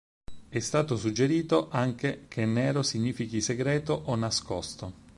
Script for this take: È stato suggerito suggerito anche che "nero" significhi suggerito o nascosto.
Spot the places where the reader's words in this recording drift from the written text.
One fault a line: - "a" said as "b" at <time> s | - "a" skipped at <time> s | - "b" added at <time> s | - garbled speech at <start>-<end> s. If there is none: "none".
- "suggerito" skipped at 1.7 s
- "suggerito" said as "segreto" at 3.4 s